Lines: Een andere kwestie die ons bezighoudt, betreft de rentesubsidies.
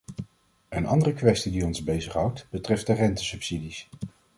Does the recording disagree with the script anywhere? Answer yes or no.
no